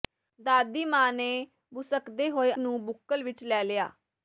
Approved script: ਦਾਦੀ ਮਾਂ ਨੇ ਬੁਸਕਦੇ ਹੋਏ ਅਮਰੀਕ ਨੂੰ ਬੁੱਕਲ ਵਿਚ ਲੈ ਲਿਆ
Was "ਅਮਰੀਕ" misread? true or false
true